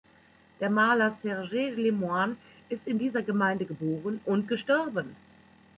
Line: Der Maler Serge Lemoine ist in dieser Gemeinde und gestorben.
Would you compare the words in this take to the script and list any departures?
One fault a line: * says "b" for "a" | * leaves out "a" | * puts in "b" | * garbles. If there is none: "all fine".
* puts in "geboren"